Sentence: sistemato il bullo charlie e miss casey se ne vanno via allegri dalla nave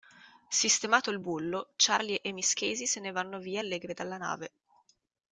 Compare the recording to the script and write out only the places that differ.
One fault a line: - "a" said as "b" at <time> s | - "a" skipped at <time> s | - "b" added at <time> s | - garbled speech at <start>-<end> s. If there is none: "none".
none